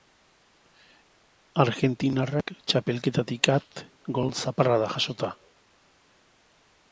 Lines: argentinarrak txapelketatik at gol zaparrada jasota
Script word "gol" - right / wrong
right